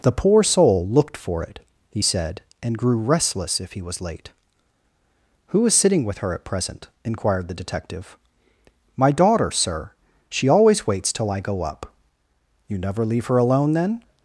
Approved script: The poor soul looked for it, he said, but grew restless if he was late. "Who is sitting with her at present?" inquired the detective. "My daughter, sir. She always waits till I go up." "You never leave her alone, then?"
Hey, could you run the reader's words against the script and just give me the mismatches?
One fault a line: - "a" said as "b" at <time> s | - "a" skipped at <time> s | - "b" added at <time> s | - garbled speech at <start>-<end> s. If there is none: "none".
- "but" said as "and" at 2.6 s